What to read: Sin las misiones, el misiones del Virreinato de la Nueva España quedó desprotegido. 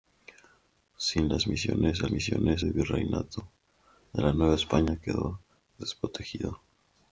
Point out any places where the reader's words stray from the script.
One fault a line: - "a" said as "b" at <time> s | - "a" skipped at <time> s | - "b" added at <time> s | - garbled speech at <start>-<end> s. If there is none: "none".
none